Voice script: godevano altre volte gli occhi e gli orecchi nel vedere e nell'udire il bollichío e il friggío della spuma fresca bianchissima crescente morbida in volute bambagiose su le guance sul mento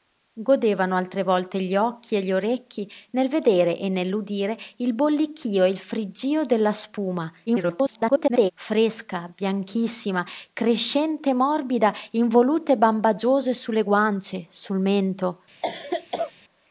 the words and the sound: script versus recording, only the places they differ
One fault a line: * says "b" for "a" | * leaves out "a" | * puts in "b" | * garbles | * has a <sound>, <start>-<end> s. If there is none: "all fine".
* garbles
* has a cough, 15.6-16.3 s